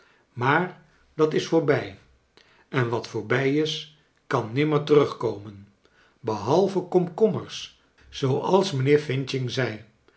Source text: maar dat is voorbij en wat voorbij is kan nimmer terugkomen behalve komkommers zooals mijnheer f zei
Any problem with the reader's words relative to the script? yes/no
no